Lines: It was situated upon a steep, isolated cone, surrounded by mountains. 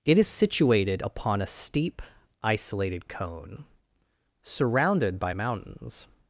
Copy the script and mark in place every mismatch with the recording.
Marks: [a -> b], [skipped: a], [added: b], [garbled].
It [was -> is] situated upon a steep, isolated cone, surrounded by mountains.